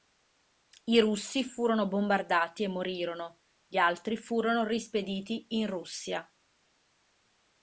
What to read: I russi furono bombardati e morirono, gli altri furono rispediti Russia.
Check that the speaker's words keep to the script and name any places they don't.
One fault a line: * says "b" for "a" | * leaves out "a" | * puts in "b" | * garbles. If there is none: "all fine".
* puts in "in"